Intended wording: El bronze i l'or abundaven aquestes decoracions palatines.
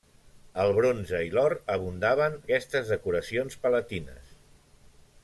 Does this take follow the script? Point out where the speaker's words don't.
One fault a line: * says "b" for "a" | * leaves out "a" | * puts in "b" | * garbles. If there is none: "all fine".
all fine